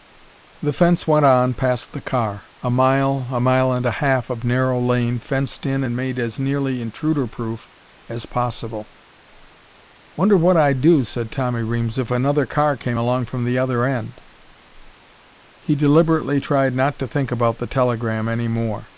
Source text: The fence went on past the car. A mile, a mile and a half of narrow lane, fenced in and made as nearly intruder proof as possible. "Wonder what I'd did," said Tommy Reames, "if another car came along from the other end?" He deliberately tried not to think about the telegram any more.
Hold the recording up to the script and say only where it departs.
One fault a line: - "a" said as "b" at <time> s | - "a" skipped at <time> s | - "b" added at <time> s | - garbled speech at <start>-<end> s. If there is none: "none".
- "did" said as "do" at 10.8 s